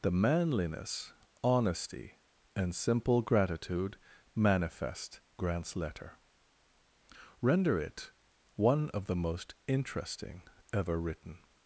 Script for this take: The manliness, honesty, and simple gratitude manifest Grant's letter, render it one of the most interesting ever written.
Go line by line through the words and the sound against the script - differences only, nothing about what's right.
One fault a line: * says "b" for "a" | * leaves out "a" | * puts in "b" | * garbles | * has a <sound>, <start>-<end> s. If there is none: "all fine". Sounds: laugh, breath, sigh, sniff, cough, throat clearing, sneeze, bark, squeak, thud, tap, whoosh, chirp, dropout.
all fine